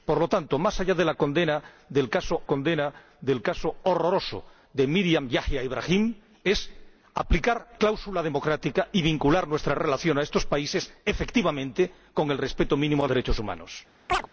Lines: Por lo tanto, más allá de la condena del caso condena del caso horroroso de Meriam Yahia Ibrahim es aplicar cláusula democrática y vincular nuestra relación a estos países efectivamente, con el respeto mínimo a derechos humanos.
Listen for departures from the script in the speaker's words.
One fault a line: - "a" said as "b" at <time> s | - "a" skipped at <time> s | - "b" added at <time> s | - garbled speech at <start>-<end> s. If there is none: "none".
none